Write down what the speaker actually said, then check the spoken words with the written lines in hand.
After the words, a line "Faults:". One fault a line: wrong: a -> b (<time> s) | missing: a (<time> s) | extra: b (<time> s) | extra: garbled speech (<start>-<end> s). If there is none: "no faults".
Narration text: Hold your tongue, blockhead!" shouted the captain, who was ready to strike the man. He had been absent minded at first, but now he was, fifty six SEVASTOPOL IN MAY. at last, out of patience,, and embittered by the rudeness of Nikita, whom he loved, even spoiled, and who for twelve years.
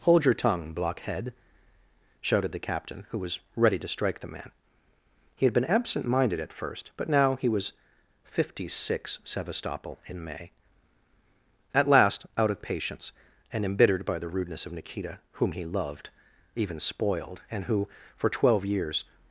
Hold your tongue, blockhead!" shouted the captain, who was ready to strike the man. He had been absent minded at first, but now he was, fifty six SEVASTOPOL IN MAY. at last, out of patience,, and embittered by the rudeness of Nikita, whom he loved, even spoiled, and who for twelve years.
Faults:
no faults